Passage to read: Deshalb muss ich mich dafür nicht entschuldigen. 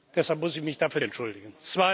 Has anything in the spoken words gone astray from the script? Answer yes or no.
yes